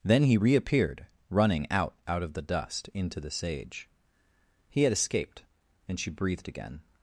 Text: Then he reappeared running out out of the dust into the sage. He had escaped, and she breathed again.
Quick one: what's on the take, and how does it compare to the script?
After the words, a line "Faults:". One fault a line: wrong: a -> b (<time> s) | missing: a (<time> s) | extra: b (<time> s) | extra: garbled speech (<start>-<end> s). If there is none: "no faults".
Then he reappeared running out out of the dust into the sage. He had escaped, and she breathed again.
Faults:
no faults